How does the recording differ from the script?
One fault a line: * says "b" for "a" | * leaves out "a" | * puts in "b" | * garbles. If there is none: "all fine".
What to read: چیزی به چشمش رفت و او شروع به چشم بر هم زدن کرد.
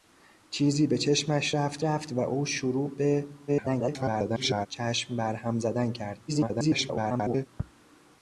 * puts in "رفت"
* garbles
* garbles